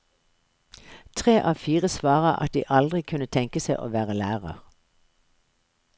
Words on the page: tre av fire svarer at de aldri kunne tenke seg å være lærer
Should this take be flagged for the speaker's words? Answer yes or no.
no